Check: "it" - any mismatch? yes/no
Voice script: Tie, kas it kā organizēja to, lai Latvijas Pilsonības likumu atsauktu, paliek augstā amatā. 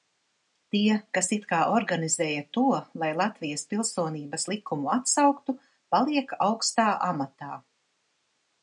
no